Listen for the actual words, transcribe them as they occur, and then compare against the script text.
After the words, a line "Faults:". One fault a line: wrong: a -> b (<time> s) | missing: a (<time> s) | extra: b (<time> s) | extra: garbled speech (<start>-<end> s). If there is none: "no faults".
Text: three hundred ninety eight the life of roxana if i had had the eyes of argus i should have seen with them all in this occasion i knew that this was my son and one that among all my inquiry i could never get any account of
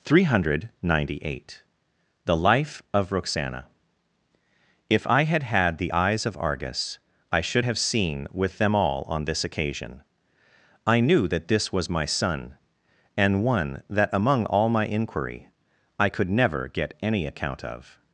three hundred ninety eight the life of roxana if i had had the eyes of argus i should have seen with them all on this occasion i knew that this was my son and one that among all my inquiry i could never get any account of
Faults:
wrong: in -> on (9.1 s)